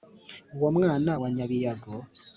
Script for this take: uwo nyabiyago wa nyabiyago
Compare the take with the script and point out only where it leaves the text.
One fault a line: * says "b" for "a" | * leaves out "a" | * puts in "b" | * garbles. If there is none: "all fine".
* says "mwana" for "nyabiyago"